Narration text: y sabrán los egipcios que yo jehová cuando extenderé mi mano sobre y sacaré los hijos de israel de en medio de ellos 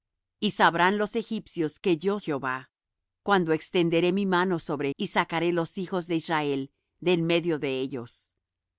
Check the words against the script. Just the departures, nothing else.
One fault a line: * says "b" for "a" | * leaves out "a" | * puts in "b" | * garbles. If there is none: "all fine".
all fine